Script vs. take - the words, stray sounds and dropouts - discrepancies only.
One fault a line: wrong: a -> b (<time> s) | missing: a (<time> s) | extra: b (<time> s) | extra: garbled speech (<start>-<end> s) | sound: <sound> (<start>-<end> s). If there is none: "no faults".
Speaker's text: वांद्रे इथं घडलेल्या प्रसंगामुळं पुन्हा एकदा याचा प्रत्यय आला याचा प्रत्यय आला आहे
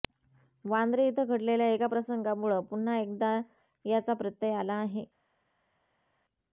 extra: एका (1.7 s)
missing: याचा प्रत्यय आला (4.7 s)